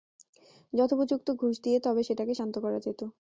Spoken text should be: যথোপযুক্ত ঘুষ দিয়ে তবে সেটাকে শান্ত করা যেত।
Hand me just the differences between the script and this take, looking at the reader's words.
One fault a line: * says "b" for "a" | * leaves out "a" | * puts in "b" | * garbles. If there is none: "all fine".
all fine